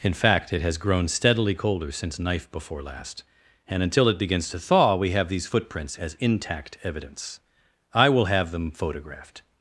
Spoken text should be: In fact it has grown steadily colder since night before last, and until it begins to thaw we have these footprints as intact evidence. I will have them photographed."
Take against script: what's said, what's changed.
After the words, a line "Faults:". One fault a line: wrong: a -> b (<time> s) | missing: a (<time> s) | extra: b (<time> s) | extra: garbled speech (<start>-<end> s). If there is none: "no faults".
In fact it has grown steadily colder since knife before last, and until it begins to thaw we have these footprints as intact evidence. I will have them photographed."
Faults:
wrong: night -> knife (2.2 s)